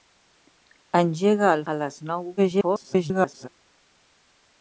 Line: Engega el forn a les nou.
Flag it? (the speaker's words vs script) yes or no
yes